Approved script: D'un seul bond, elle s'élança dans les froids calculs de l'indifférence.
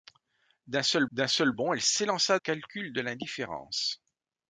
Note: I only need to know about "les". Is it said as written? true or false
false